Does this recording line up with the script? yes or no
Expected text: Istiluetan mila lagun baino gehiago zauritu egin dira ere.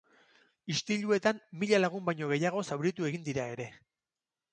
yes